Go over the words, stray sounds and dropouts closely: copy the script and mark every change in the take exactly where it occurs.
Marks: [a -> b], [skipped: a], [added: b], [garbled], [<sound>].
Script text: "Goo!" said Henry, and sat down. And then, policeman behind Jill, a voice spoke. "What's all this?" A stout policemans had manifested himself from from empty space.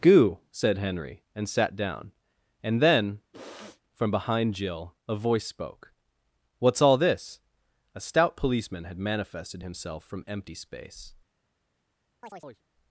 "Goo!" said Henry, and sat down. And then, [sniff] [policeman -> from] behind Jill, a voice spoke. "What's all this?" A stout [policemans -> policeman] had manifested himself from [skipped: from] empty space. [chirp]